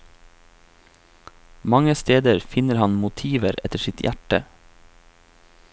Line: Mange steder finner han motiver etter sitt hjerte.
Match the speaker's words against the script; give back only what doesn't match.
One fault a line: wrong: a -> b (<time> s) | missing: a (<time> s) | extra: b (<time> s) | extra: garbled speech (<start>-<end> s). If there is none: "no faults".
no faults